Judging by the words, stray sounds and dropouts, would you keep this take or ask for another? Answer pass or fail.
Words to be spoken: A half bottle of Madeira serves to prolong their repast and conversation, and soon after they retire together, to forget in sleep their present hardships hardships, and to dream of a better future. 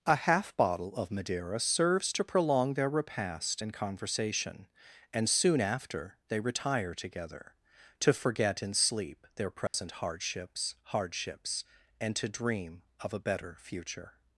fail